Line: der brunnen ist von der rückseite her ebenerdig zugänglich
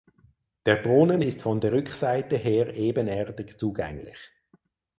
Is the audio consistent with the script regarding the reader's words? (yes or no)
yes